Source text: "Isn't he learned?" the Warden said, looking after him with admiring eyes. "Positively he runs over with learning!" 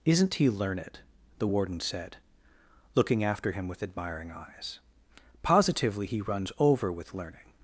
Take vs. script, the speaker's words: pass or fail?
pass